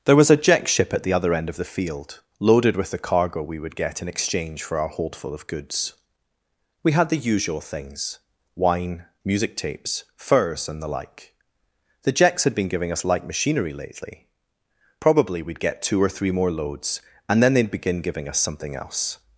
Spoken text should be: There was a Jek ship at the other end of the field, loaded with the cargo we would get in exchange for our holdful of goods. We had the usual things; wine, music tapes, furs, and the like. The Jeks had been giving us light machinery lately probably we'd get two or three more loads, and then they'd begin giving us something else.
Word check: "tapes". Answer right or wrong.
right